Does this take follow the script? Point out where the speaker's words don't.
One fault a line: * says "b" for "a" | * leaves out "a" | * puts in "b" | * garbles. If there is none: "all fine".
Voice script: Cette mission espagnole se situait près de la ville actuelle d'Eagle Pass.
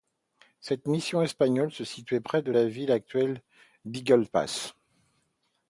all fine